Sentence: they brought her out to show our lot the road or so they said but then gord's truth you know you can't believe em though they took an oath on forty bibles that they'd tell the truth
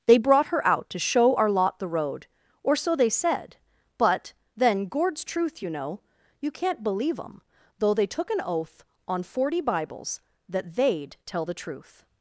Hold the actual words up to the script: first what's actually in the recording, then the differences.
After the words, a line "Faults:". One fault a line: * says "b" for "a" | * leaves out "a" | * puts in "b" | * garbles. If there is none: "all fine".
they brought her out to show our lot the road or so they said but then gord's truth you know you can't believe em though they took an oath on forty bibles that they'd tell the truth
Faults:
all fine